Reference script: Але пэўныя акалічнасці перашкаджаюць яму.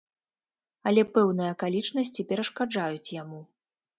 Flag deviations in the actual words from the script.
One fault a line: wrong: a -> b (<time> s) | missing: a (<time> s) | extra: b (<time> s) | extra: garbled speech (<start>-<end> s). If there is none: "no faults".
no faults